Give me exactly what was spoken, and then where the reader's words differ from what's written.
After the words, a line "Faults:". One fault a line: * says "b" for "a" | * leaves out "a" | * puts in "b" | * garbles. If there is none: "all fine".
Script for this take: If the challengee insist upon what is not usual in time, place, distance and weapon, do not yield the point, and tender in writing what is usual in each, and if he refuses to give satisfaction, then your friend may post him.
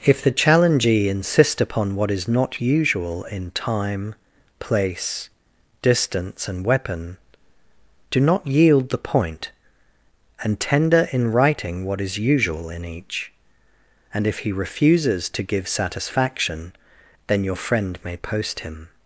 If the challengee insist upon what is not usual in time, place, distance and weapon, do not yield the point, and tender in writing what is usual in each, and if he refuses to give satisfaction, then your friend may post him.
Faults:
all fine